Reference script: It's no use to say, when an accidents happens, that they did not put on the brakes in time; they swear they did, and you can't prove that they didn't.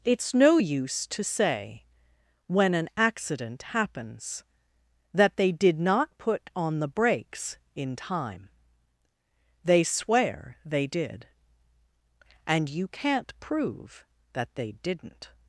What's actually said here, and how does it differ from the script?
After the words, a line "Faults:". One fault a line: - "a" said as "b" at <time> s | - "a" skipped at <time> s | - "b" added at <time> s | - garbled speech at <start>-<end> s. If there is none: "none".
It's no use to say, when an accident happens, that they did not put on the brakes in time; they swear they did, and you can't prove that they didn't.
Faults:
- "accidents" said as "accident" at 3.0 s